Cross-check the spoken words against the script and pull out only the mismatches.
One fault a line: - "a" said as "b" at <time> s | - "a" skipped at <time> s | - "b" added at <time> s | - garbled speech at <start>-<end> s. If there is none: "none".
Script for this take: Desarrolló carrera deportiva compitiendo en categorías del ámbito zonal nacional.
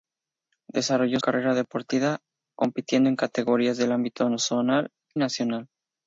none